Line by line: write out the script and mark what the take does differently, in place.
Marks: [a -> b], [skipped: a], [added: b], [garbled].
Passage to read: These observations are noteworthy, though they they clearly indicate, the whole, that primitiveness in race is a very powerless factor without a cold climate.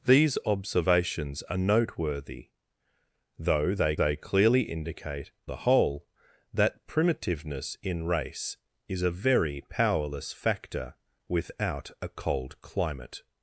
These observations are noteworthy, though they they clearly indicate, the whole, that primitiveness in race is a very powerless factor without a cold climate.